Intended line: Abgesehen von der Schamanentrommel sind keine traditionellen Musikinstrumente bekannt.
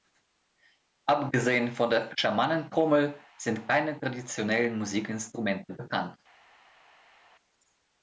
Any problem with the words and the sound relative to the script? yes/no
no